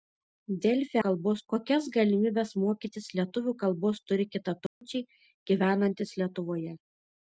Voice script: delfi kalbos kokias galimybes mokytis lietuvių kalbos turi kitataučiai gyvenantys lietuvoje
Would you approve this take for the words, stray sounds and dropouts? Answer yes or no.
no